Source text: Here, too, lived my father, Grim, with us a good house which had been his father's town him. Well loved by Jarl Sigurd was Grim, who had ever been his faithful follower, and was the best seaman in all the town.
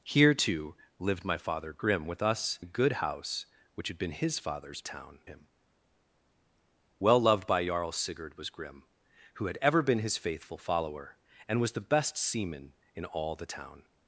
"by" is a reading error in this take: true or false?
false